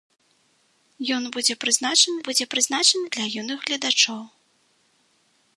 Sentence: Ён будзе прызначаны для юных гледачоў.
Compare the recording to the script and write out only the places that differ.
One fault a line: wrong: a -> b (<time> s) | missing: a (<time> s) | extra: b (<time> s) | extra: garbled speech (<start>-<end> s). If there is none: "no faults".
extra: будзе прызначаны (2.3 s)